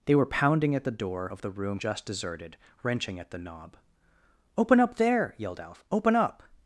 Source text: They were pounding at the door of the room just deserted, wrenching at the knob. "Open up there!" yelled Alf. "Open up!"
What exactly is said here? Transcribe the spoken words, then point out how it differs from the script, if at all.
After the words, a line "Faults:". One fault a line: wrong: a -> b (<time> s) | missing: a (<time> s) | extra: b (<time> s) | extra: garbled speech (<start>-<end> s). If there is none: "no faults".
They were pounding at the door of the room just deserted, wrenching at the knob. "Open up there!" yelled Alf. "Open up!"
Faults:
no faults